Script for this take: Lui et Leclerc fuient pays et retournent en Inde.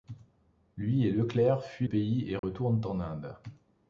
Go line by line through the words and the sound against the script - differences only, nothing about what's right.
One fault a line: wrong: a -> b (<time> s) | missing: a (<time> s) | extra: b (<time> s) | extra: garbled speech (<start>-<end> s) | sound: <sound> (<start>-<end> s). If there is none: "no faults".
sound: dropout (2.4-2.4 s)